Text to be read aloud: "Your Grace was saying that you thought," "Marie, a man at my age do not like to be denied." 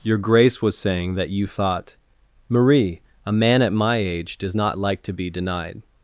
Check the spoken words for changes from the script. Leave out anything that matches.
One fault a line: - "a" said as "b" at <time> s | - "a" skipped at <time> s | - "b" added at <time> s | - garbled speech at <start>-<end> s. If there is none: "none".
- "do" said as "does" at 4.4 s